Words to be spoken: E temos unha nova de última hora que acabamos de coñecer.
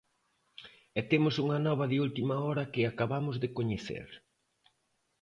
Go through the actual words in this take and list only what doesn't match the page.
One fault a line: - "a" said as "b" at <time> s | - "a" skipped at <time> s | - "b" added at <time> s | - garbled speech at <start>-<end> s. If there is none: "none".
none